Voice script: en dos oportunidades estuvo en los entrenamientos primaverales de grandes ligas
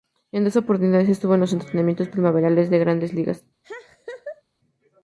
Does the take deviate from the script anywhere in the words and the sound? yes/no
yes